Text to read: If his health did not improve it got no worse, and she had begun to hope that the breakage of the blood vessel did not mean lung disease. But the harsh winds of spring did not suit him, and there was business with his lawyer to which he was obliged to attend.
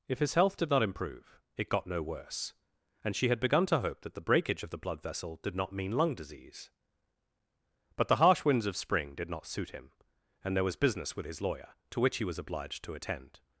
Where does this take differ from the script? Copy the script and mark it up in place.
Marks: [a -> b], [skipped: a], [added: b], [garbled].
If his health did not improve it got no worse, and she had begun to hope that the breakage of the blood vessel did not mean lung disease. But the harsh winds of spring did not suit him, and there was business with his lawyer to which he was obliged to attend.